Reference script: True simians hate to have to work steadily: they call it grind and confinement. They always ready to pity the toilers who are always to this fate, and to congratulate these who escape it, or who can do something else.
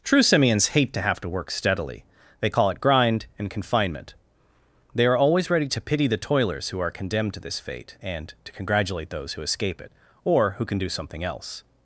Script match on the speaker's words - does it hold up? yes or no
no